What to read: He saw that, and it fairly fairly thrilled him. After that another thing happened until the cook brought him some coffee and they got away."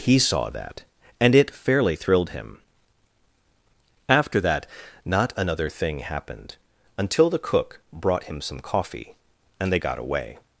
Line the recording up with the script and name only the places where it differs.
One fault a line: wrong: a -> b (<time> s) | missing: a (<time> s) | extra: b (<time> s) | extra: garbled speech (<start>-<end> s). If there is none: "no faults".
missing: fairly (1.9 s)
extra: not (5.0 s)